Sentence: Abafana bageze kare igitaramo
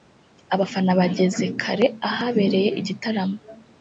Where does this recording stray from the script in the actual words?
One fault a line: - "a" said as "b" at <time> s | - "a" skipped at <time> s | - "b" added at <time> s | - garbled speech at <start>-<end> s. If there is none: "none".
- "ahabereye" added at 2.1 s